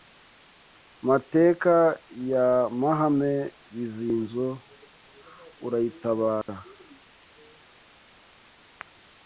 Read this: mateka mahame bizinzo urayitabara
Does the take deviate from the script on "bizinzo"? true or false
false